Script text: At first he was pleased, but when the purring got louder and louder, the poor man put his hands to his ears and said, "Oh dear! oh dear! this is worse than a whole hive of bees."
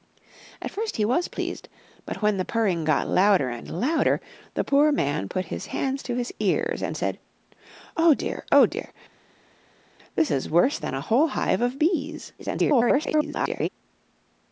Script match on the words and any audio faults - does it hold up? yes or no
no